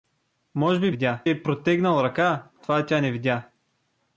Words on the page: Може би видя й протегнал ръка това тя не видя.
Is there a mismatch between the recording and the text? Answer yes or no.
no